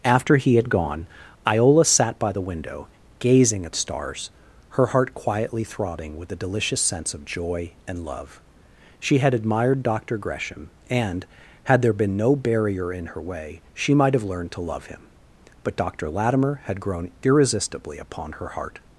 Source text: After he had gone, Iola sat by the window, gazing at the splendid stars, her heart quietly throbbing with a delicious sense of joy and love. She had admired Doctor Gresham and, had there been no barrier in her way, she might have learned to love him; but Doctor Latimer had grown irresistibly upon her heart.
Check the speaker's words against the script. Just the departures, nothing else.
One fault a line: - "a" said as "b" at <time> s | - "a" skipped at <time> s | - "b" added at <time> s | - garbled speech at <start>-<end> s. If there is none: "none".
- "the splendid" skipped at 3.7 s